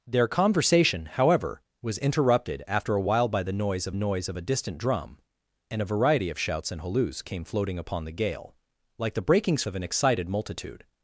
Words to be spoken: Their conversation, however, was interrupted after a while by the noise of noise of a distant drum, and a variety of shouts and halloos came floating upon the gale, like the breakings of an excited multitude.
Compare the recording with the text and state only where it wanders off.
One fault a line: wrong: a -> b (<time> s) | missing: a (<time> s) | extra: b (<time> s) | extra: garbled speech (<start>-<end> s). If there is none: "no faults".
no faults